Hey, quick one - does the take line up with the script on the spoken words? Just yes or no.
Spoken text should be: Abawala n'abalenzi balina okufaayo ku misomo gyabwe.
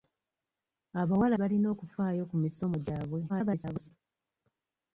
no